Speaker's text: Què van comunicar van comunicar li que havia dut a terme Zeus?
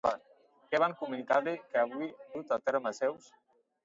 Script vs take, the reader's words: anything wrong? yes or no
yes